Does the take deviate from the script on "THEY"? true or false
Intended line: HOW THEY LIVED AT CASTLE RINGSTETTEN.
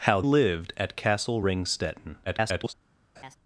true